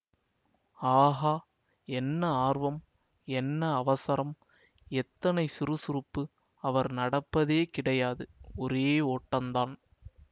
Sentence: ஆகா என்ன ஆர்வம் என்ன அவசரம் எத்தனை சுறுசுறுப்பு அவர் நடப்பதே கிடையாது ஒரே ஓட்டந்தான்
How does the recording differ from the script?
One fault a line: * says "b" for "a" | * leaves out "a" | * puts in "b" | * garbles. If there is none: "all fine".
all fine